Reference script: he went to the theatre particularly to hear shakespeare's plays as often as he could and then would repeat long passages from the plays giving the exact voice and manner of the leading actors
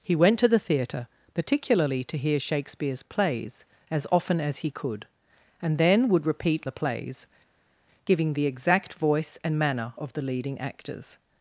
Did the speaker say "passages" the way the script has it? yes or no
no